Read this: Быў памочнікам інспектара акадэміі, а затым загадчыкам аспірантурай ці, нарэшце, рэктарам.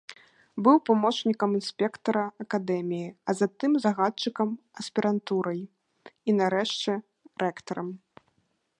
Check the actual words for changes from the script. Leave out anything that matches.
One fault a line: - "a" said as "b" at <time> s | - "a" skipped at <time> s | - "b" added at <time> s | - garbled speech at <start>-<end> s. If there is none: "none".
- "ці" said as "і" at 5.7 s